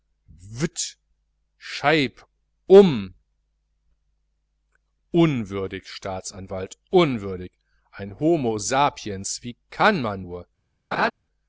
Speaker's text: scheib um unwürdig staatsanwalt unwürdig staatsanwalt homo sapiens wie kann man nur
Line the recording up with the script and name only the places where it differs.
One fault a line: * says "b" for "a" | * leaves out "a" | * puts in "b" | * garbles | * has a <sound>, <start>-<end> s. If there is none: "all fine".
* says "ein" for "staatsanwalt"
* has a laugh, 10.9-11.1 s